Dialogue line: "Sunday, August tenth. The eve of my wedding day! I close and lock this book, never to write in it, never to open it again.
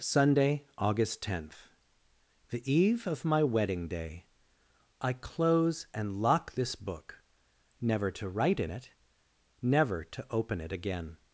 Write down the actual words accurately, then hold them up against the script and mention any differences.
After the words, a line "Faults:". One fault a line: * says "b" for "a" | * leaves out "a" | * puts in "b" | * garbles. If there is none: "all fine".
"Sunday, August tenth. The eve of my wedding day! I close and lock this book, never to write in it, never to open it again.
Faults:
all fine